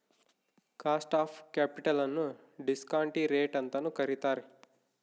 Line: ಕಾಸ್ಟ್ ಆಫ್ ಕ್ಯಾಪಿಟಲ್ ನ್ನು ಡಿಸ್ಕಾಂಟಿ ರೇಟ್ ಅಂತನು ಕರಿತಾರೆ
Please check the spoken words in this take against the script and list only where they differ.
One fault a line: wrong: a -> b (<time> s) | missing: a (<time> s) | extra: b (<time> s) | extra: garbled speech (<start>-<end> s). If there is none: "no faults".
no faults